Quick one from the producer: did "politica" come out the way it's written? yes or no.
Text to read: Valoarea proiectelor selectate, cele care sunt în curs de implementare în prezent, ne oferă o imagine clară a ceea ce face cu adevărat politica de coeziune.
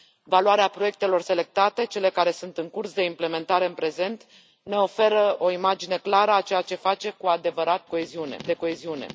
no